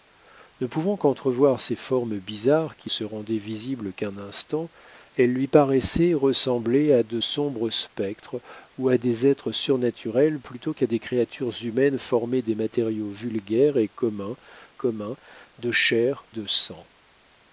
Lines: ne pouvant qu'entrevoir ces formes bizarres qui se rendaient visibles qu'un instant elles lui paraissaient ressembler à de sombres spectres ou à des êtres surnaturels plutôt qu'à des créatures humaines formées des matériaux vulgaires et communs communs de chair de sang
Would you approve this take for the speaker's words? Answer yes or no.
yes